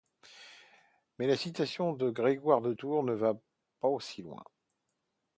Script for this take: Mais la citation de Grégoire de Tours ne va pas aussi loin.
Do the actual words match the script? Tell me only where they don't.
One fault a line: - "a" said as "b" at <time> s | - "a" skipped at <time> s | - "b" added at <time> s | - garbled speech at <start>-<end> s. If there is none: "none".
none